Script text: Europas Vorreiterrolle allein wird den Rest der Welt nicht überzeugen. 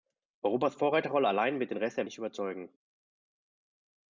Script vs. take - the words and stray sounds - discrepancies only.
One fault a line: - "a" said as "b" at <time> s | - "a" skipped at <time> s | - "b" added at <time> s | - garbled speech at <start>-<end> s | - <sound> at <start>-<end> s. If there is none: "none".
- "Welt" skipped at 2.1 s